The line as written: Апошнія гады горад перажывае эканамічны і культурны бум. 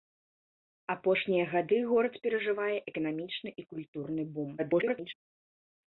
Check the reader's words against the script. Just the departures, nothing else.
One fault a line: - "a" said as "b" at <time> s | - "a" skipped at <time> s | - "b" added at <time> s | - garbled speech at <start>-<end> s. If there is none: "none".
- garbled speech at 4.6-5.1 s